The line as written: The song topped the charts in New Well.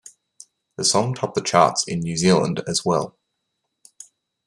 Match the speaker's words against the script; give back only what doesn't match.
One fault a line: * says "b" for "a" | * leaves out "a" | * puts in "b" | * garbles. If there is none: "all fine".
* puts in "Zealand as"